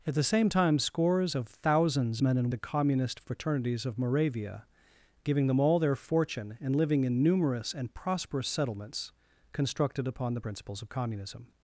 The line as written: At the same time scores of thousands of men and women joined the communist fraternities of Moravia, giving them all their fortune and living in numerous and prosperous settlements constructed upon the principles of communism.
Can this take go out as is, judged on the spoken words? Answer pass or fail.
fail